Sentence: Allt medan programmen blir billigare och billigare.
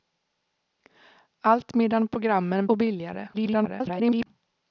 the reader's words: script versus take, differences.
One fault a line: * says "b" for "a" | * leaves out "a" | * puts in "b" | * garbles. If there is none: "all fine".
* leaves out "blir billigare"
* garbles